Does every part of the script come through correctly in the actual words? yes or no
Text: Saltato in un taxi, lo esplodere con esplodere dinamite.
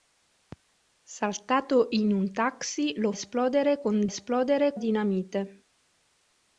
yes